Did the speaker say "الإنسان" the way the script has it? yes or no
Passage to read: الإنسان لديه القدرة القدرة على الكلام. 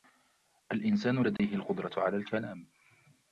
yes